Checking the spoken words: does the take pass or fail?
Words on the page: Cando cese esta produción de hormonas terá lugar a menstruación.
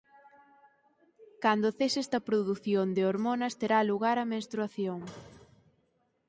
pass